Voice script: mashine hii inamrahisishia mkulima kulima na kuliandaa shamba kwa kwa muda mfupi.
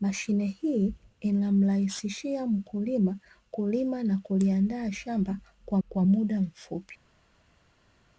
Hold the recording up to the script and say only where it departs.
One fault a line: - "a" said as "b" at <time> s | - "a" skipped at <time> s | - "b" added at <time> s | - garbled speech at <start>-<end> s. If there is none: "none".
none